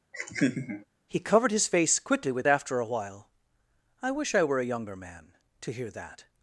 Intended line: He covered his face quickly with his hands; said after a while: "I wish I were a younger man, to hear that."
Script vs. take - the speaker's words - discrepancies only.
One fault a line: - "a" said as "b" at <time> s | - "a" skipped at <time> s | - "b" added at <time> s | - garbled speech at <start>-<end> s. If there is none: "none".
- "his hands said" skipped at 2.5 s